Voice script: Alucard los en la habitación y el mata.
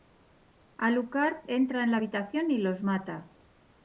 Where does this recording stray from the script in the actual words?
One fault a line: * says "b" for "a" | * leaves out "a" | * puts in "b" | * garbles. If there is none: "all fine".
* says "entra" for "los"
* says "los" for "el"